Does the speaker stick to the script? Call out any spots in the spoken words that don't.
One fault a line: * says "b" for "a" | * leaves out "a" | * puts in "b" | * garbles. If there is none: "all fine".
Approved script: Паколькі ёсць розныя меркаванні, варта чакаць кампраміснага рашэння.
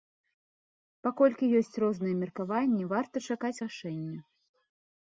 * leaves out "кампраміснага"